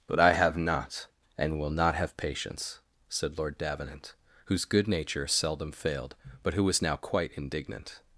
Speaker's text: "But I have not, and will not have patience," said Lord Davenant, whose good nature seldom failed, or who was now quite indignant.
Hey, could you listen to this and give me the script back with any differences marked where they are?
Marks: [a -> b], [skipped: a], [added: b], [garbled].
"But I have not, and will not have patience," said Lord Davenant, whose good nature seldom failed, [or -> but] who was now quite indignant.